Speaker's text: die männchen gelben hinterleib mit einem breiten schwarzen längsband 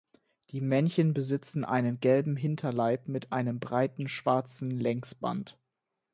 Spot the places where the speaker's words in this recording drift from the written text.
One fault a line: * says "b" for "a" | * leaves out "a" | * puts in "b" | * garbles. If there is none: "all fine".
* puts in "besitzen einen"